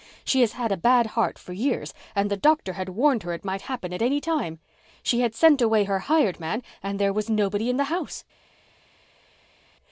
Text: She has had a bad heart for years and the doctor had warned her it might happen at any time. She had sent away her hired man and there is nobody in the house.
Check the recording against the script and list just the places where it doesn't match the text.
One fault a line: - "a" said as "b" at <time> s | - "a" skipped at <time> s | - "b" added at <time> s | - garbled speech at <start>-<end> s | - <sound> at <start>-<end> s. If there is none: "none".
- "is" said as "was" at 7.1 s